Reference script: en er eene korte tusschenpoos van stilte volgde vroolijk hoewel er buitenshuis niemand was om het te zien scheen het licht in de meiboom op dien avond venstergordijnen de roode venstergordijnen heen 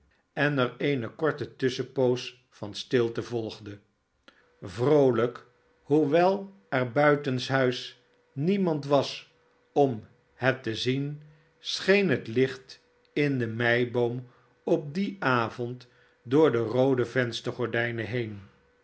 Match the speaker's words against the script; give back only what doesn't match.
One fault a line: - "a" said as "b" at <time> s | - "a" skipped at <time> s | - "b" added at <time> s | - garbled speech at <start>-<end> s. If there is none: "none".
- "venstergordijnen" said as "door" at 16.2 s